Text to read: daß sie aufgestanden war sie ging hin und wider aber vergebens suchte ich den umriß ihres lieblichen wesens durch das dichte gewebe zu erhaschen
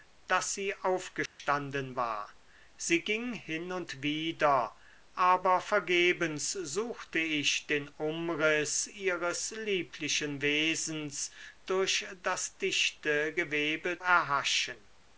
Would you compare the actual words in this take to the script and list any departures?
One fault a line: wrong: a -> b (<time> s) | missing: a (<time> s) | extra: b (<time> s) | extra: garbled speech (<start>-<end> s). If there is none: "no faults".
missing: zu (14.0 s)